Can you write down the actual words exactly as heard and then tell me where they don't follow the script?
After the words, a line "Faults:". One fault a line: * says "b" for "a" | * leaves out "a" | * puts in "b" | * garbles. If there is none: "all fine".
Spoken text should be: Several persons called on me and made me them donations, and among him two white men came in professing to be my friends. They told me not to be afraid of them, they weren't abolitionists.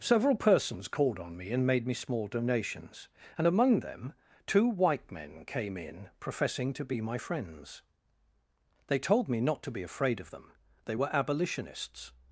Several persons called on me and made me small donations, and among them two white men came in professing to be my friends. They told me not to be afraid of them, they were abolitionists.
Faults:
* says "small" for "them"
* says "them" for "him"
* says "were" for "weren't"